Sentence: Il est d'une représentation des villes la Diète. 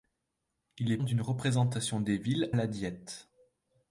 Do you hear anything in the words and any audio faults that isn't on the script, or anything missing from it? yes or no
no